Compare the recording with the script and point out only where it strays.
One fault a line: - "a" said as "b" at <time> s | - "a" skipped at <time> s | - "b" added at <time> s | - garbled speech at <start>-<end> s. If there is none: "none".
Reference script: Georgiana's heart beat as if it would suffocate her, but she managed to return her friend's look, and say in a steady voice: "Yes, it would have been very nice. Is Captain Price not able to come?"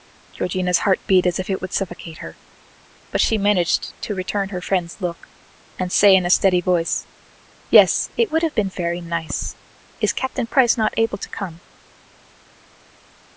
none